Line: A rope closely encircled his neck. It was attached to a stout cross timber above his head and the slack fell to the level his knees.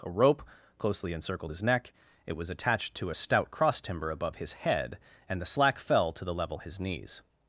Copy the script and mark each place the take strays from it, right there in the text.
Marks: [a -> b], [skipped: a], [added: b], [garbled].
A rope closely encircled his neck. It was attached to a stout cross timber above his head and the slack fell to the level his knees.